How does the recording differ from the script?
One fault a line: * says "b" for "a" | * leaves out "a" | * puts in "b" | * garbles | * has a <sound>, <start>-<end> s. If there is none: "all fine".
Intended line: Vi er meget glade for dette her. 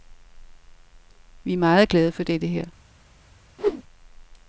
* has a whoosh, 3.6-3.8 s